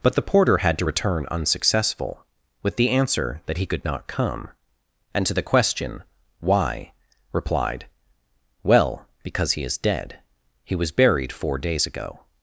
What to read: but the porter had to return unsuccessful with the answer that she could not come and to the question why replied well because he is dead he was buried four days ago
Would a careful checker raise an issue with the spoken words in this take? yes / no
yes